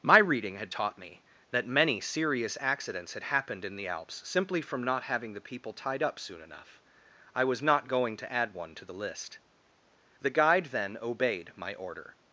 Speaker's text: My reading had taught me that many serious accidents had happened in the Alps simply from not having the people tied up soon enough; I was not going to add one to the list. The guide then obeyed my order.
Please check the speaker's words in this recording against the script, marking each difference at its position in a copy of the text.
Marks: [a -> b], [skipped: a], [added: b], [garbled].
My reading had taught me that many serious accidents had happened in the Alps simply from not having the people tied up soon enough; I was not going to add one to the list. The guide then obeyed my order.